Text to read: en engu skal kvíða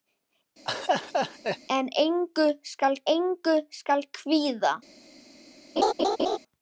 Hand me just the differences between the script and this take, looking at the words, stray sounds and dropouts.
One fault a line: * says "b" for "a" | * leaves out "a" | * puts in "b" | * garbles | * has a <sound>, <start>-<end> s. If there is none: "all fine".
* has a laugh, 0.7-1.6 s
* puts in "engu skal"
* has a laugh, 5.8-6.4 s